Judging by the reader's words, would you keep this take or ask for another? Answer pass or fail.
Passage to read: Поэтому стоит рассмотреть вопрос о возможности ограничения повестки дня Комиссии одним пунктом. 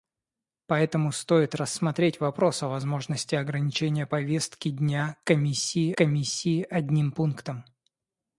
fail